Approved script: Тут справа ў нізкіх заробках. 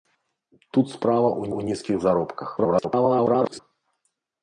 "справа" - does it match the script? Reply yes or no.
yes